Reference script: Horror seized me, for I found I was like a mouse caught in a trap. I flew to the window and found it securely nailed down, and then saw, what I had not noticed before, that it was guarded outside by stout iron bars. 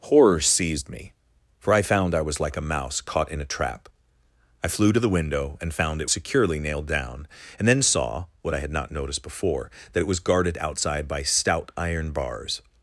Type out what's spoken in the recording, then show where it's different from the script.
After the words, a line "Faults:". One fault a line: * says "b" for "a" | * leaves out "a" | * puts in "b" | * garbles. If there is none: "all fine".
Horror seized me, for I found I was like a mouse caught in a trap. I flew to the window and found it securely nailed down, and then saw, what I had not noticed before, that it was guarded outside by stout iron bars.
Faults:
all fine